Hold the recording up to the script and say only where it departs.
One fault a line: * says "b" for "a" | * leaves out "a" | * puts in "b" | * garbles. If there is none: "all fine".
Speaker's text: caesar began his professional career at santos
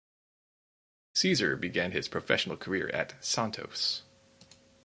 all fine